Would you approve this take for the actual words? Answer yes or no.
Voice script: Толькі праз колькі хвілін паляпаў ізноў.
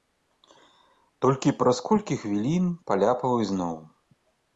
yes